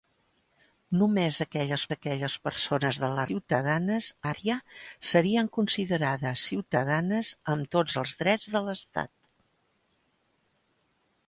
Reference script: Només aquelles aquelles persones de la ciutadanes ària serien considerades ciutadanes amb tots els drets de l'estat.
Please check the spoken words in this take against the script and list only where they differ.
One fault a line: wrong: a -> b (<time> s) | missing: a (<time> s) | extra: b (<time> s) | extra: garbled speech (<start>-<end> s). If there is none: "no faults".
no faults